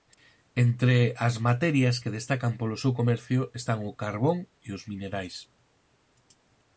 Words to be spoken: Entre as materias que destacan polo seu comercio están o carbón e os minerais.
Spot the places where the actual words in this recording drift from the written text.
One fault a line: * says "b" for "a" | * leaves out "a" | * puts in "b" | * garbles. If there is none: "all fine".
all fine